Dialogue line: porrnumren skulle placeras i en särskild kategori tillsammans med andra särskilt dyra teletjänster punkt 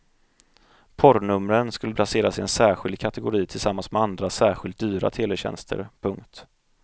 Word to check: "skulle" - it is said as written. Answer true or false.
true